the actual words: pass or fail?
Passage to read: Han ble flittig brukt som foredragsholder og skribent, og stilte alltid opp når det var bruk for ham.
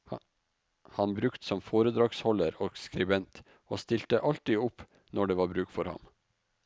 fail